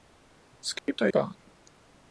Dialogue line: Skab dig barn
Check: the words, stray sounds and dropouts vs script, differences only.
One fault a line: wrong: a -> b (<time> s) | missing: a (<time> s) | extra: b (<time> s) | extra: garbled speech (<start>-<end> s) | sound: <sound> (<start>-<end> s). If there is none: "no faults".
sound: dropout (0.8-0.9 s)